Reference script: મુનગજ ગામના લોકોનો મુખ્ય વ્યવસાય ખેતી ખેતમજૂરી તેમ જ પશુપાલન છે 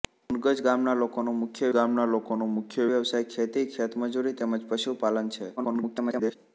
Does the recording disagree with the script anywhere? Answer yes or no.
yes